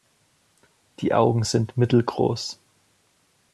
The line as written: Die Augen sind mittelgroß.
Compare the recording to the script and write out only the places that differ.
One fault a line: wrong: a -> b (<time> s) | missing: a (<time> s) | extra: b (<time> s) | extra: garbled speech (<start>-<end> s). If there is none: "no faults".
no faults